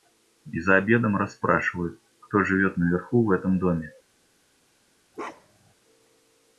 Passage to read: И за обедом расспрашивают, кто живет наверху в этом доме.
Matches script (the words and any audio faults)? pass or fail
fail